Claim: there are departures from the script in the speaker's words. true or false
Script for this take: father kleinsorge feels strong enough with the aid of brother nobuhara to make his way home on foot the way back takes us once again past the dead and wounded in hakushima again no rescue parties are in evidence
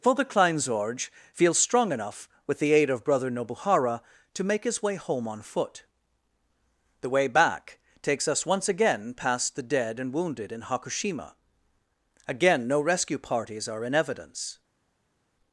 false